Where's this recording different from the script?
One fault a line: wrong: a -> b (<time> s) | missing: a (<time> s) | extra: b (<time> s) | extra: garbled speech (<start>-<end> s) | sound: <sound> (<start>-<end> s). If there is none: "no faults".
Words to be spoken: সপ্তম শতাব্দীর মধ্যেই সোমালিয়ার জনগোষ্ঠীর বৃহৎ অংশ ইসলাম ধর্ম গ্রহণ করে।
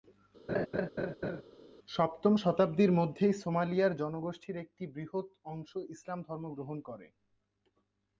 sound: laugh (0.5-1.4 s)
extra: একটি (4.6 s)